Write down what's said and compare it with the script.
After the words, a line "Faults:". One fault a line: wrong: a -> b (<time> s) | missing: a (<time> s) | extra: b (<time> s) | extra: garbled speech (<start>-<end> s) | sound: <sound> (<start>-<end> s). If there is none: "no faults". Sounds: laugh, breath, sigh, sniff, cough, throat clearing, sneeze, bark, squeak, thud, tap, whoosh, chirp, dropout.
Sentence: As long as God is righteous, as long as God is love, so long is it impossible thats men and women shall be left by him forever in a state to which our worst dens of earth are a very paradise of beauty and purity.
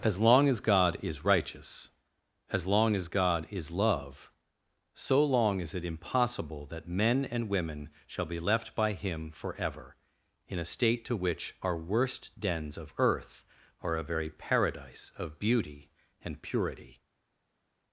As long as God is righteous, as long as God is love, so long is it impossible that men and women shall be left by him forever in a state to which our worst dens of earth are a very paradise of beauty and purity.
Faults:
wrong: thats -> that (6.7 s)